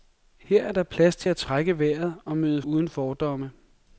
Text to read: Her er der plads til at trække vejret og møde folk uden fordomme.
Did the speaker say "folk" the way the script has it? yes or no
no